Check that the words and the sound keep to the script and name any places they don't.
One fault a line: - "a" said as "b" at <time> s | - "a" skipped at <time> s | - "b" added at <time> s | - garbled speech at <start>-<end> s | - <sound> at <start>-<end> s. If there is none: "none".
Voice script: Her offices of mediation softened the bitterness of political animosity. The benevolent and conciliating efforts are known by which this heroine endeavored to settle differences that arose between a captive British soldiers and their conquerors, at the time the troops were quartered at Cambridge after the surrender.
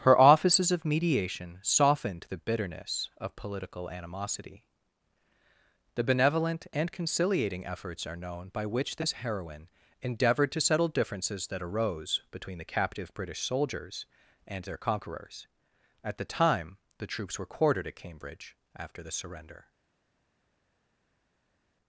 - "a" said as "the" at 12.6 s